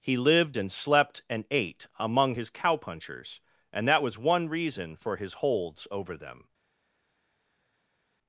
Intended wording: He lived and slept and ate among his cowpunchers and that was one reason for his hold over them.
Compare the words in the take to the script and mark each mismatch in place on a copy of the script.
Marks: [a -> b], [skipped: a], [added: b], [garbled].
He lived and slept and ate among his cowpunchers and that was one reason for his [hold -> holds] over them.